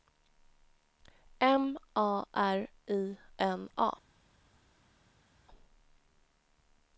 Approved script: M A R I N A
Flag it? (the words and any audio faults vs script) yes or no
no